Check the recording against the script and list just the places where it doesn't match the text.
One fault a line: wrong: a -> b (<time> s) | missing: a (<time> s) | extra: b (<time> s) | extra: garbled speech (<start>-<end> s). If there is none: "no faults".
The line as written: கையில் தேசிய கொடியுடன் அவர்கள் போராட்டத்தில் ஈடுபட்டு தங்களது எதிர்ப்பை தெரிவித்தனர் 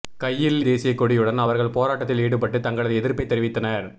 no faults